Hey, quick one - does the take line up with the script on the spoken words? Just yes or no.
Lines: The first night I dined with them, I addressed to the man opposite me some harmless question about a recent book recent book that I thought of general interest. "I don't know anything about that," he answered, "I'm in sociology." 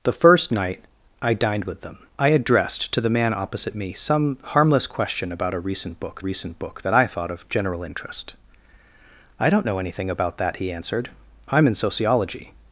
yes